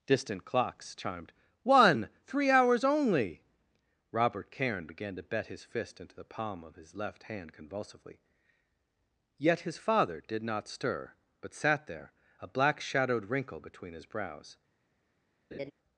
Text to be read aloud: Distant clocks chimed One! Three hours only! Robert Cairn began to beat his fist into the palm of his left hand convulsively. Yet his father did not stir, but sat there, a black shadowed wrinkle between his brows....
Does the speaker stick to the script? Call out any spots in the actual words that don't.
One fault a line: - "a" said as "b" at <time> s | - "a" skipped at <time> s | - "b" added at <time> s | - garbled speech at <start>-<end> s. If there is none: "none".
- "beat" said as "bet" at 5.2 s